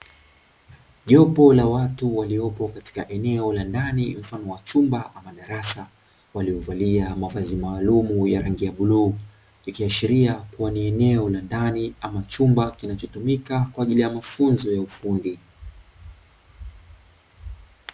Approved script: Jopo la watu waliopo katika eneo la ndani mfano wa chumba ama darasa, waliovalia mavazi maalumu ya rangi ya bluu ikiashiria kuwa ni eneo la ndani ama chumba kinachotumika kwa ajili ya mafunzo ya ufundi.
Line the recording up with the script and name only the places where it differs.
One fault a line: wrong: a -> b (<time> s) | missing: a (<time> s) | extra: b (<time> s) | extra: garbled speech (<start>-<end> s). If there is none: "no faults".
no faults